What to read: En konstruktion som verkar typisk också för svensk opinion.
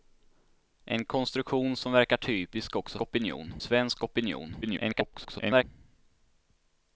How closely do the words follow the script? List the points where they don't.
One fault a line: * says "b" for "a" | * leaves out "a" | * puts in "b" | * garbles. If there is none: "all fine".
* says "opinion" for "för"
* garbles